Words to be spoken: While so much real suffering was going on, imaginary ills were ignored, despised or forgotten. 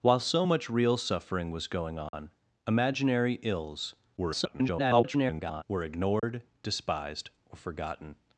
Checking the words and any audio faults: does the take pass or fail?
fail